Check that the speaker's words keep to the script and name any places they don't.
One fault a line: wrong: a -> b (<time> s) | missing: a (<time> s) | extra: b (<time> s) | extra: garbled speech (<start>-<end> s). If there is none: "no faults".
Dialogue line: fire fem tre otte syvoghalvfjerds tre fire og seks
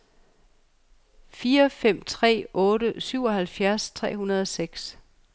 wrong: fire -> hundrede (4.2 s)